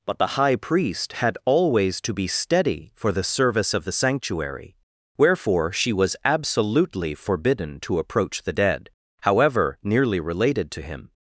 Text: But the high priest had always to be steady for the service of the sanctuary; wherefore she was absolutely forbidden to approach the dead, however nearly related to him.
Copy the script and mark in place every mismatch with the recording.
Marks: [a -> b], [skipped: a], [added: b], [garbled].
But the high priest had always to be steady for the service of the sanctuary; wherefore she was absolutely forbidden to approach the dead, however nearly related to him.